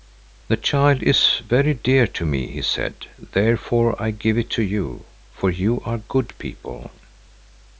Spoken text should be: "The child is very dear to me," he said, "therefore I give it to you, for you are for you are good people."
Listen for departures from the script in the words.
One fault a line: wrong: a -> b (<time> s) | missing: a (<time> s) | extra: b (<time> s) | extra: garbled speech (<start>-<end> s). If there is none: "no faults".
missing: for you are (6.0 s)